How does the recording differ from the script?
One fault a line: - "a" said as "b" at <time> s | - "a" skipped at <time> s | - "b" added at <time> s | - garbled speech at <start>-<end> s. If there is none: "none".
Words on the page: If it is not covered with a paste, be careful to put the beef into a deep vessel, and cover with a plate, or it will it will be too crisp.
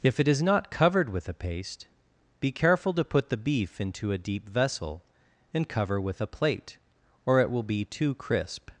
- "it will" skipped at 7.6 s